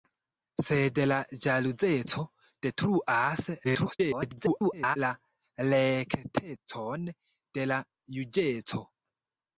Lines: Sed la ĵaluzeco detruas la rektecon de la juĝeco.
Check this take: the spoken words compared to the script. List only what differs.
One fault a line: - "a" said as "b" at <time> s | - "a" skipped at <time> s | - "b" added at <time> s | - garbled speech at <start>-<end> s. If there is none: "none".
- garbled speech at 3.6-5.0 s